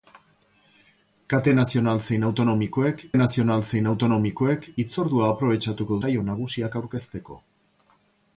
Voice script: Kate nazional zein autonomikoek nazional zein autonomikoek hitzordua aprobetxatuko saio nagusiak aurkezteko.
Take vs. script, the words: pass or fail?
pass